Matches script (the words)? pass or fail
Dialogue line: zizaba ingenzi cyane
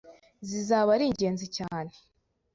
fail